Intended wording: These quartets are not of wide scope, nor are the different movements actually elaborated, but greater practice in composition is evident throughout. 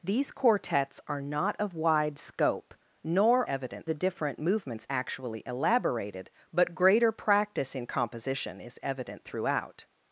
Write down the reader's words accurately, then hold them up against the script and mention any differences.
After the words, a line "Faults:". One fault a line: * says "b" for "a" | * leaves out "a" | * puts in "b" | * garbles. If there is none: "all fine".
These quartets are not of wide scope, nor evident the different movements actually elaborated, but greater practice in composition is evident throughout.
Faults:
* says "evident" for "are"